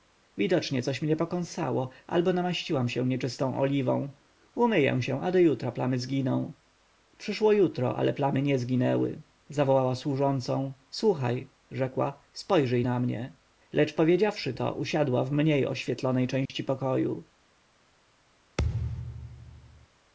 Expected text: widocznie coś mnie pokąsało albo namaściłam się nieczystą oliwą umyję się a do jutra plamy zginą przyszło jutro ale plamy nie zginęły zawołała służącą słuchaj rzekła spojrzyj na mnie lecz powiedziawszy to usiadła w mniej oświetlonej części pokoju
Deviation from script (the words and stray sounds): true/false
true